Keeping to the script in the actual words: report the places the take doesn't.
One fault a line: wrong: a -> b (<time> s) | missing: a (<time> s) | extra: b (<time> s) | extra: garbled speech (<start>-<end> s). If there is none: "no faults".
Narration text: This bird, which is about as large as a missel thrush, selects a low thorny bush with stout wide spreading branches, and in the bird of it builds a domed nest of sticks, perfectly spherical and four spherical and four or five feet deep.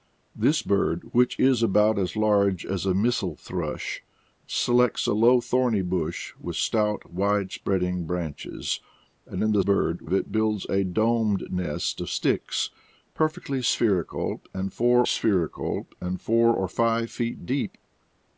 no faults